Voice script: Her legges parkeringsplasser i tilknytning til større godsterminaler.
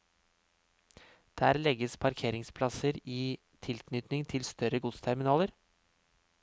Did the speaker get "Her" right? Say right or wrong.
wrong